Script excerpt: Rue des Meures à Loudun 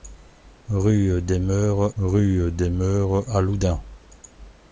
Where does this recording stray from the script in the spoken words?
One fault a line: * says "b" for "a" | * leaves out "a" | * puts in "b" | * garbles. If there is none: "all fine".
* puts in "rue des Meures"